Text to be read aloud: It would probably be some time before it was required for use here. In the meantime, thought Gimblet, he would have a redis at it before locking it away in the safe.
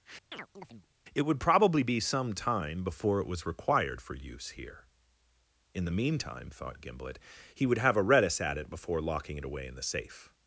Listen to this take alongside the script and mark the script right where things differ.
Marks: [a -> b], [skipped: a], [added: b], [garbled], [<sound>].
[chirp] It would probably be some time before it was required for use here. In the meantime, thought Gimblet, he would have a redis at it before locking it away in the safe.